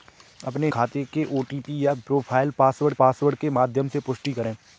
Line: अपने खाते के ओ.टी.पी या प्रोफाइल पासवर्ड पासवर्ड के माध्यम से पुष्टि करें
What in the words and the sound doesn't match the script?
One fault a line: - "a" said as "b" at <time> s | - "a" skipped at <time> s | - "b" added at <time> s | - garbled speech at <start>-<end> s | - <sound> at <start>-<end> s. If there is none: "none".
none